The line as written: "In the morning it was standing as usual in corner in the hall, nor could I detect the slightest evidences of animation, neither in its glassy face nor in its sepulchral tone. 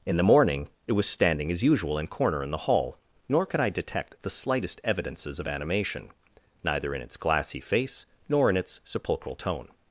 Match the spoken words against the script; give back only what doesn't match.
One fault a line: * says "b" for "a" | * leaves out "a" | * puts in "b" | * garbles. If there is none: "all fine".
all fine